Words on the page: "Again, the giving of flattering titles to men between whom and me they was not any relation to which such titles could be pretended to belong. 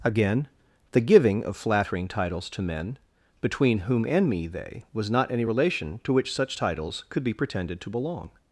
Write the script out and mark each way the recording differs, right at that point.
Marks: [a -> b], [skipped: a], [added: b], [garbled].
"Again, the giving of flattering titles to men between whom and me they was not any relation to which such titles could be pretended to belong.